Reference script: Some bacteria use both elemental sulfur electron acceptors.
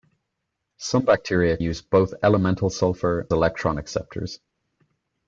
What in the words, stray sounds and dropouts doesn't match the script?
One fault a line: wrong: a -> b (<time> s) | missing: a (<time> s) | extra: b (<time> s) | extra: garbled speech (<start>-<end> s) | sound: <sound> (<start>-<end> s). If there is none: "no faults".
no faults